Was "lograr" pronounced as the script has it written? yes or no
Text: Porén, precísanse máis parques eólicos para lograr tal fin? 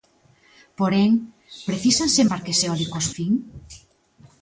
no